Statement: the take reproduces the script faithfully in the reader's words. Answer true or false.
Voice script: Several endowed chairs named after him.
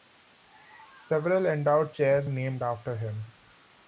true